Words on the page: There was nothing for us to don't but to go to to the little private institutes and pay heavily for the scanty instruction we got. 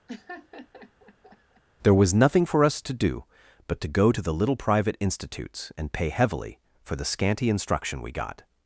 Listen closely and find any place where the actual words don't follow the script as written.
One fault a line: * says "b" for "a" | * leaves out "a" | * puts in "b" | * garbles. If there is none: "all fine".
* says "do" for "don't"
* leaves out "to"